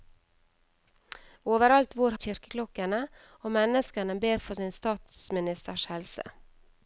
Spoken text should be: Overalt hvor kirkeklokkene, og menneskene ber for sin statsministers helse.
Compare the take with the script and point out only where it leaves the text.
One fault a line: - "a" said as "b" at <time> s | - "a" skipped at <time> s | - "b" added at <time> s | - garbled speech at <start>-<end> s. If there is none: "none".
none